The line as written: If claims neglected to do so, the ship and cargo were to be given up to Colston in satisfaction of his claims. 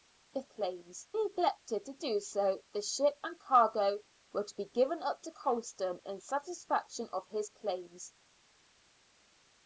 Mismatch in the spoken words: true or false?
false